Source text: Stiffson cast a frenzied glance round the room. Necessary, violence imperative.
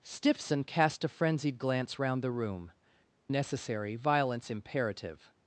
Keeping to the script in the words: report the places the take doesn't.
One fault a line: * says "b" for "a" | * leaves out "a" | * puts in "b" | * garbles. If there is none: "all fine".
all fine